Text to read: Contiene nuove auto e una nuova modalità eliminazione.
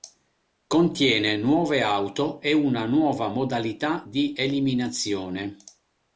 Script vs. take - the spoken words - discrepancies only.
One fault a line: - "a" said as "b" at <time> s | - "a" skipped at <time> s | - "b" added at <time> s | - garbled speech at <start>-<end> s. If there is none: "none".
- "di" added at 4.1 s